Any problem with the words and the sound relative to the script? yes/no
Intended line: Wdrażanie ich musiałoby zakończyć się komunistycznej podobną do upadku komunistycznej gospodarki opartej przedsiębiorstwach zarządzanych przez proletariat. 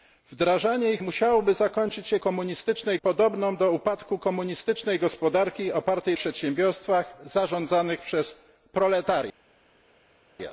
no